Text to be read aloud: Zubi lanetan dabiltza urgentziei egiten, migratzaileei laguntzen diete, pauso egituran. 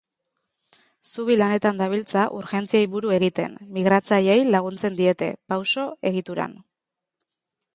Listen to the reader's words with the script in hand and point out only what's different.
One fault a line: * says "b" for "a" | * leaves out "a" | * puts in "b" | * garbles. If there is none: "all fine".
* puts in "buru"